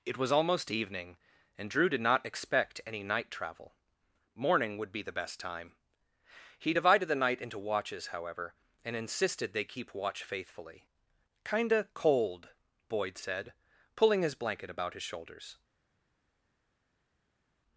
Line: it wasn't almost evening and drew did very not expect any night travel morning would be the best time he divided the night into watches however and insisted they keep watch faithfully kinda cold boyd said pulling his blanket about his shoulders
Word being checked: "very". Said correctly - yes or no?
no